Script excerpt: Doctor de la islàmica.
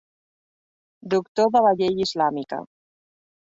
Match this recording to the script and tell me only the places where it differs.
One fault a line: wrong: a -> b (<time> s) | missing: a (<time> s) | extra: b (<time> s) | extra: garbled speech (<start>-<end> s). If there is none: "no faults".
extra: llei (1.8 s)